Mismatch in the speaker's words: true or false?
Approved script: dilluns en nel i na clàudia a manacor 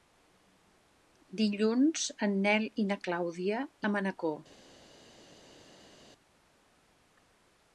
false